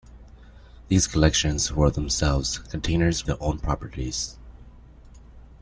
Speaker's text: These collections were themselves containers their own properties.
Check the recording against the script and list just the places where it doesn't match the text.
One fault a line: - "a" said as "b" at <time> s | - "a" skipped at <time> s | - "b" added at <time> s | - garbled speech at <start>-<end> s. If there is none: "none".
none